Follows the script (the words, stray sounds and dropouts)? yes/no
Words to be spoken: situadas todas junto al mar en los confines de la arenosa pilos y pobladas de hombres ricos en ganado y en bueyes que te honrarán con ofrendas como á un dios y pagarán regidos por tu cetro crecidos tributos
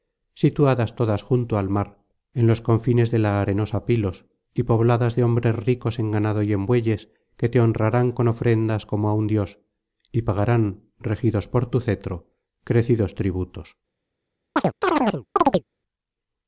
no